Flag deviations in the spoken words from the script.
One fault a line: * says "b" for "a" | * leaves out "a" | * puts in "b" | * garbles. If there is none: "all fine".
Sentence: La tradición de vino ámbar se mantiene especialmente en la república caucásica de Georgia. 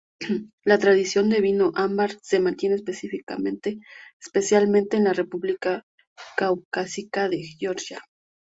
all fine